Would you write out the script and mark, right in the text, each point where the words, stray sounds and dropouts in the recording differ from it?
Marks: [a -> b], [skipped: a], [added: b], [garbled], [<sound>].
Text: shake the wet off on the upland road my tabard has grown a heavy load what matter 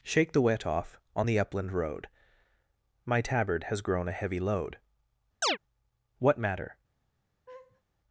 shake the wet off on the upland road my tabard has grown a heavy load [chirp] what matter [laugh]